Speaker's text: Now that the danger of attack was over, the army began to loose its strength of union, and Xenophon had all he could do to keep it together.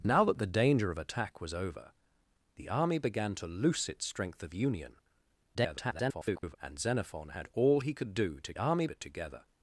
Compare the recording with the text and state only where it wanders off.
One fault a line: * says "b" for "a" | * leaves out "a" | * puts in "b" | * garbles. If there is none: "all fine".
* garbles
* says "army" for "keep"